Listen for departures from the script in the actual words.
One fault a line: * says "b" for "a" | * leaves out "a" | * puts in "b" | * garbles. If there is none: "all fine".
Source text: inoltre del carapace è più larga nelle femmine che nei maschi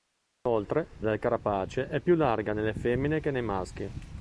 all fine